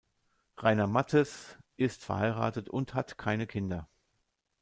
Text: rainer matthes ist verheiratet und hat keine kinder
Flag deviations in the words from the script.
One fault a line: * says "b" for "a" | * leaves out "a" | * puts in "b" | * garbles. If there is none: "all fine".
all fine